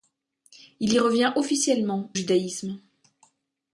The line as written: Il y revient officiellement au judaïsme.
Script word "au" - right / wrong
wrong